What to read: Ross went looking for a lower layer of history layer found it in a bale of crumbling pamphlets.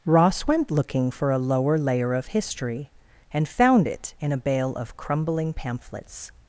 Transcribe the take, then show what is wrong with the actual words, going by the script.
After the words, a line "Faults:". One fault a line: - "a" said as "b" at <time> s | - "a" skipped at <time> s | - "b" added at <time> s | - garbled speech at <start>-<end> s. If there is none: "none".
Ross went looking for a lower layer of history and found it in a bale of crumbling pamphlets.
Faults:
- "layer" said as "and" at 3.3 s